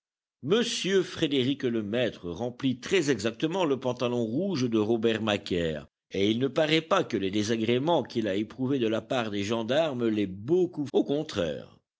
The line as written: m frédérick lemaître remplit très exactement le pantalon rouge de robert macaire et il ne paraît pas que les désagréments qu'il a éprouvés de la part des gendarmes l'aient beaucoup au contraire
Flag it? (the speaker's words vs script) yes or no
no